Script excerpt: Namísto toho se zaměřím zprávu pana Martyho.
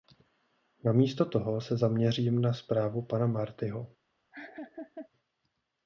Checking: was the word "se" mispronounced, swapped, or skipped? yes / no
no